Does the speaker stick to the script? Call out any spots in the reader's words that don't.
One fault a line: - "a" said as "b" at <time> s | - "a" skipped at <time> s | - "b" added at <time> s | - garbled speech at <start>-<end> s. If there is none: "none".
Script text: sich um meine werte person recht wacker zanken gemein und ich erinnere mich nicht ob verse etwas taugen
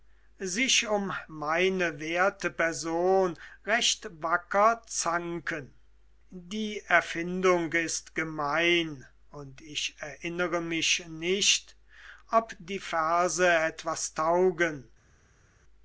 - "die erfindung ist" added at 6.3 s
- "die" added at 12.6 s